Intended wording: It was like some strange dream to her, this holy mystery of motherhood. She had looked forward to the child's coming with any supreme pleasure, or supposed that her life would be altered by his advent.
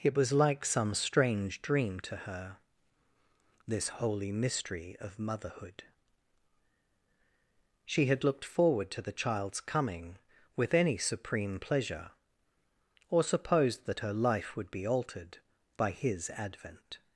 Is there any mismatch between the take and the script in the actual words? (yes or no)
no